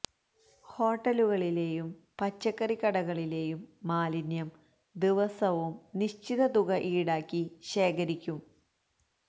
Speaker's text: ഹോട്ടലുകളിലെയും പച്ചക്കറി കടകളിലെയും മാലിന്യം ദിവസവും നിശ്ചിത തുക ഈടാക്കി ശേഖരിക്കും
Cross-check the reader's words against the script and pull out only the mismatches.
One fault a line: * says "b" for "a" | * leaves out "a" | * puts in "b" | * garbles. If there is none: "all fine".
all fine